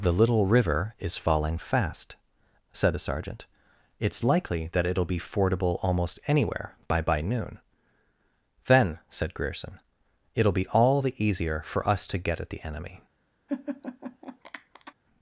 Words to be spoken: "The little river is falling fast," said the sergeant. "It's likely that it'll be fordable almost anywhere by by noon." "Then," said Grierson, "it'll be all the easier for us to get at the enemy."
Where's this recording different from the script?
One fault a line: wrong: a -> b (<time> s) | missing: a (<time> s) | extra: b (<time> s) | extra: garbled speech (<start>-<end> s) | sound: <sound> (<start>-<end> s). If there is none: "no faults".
sound: laugh (13.5-14.9 s)